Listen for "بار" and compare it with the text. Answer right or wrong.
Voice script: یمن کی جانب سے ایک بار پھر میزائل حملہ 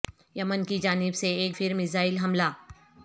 wrong